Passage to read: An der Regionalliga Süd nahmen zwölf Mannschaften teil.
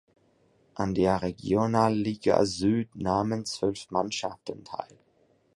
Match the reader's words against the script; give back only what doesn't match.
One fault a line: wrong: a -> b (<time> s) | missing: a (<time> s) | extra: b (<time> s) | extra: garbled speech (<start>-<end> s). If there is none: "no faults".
no faults